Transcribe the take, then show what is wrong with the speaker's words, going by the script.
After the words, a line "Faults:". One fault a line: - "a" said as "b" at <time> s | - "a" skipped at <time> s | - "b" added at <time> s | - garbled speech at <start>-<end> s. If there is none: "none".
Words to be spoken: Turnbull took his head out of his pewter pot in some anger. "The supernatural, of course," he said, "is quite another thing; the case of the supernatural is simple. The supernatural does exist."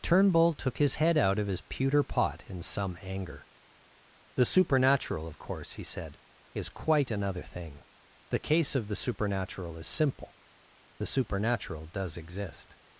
Turnbull took his head out of his pewter pot in some anger. "The supernatural, of course," he said, "is quite another thing; the case of the supernatural is simple. The supernatural does exist."
Faults:
none